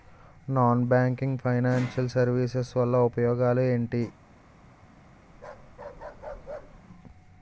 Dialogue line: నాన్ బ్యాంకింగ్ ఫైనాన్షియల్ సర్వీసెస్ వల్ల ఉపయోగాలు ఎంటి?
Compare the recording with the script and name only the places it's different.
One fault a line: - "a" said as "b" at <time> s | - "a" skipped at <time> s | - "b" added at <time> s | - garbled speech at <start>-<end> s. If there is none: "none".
none